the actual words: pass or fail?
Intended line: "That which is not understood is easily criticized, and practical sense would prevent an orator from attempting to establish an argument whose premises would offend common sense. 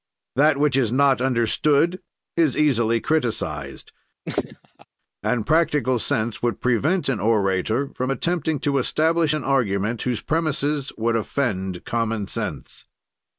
pass